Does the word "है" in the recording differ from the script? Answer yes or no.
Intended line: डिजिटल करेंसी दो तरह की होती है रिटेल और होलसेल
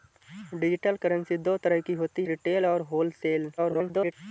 yes